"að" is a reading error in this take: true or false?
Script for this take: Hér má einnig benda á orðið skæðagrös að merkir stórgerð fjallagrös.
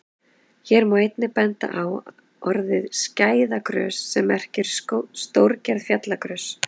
true